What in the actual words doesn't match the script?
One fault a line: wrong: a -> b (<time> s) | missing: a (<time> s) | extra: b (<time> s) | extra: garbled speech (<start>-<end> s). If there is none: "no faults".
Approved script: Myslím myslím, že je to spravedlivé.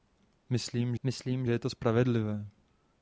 no faults